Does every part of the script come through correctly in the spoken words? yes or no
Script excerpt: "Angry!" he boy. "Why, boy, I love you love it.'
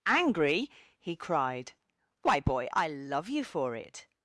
no